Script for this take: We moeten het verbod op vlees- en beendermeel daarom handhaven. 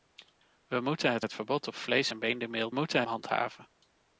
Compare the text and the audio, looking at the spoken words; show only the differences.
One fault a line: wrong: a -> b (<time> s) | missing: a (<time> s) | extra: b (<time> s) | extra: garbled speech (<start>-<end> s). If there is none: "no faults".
extra: het (1.2 s)
wrong: daarom -> moeten (2.7 s)